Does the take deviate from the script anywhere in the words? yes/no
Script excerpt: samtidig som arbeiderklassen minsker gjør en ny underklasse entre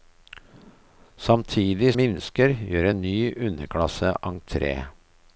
yes